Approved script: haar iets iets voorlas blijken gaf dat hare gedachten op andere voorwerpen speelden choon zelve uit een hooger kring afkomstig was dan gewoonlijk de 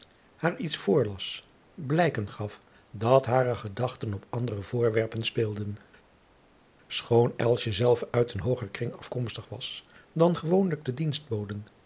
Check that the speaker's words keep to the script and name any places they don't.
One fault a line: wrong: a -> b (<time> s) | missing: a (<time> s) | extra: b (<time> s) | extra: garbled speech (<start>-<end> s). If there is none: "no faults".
missing: iets (0.8 s)